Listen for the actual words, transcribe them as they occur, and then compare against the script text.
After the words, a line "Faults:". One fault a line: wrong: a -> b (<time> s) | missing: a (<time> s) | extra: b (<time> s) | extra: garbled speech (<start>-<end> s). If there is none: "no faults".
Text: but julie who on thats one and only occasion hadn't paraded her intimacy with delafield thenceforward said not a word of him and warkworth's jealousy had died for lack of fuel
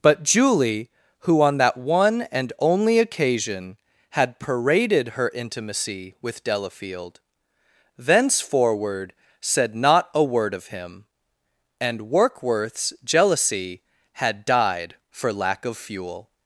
but julie who on that one and only occasion had paraded her intimacy with delafield thenceforward said not a word of him and warkworth's jealousy had died for lack of fuel
Faults:
wrong: thats -> that (1.6 s)
wrong: hadn't -> had (4.1 s)